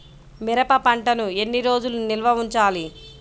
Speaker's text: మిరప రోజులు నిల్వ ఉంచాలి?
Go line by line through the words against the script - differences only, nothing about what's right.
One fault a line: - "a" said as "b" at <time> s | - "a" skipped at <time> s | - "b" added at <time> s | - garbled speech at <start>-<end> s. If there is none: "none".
- "పంటను ఎన్ని" added at 0.8 s